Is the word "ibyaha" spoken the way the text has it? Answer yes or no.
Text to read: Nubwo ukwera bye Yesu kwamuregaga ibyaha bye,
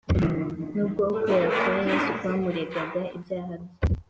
yes